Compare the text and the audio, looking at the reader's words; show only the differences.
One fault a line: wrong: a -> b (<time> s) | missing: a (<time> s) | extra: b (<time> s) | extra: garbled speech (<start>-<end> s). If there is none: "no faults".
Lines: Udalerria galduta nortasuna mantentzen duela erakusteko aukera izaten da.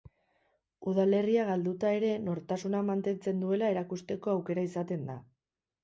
extra: ere (2.0 s)